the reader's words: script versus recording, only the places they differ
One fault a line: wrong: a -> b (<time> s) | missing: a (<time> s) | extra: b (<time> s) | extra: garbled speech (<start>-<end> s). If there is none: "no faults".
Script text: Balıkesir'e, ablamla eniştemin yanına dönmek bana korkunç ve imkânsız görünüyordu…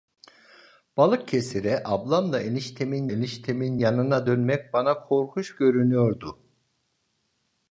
extra: eniştemin (3.1 s)
missing: ve imkânsız (5.6 s)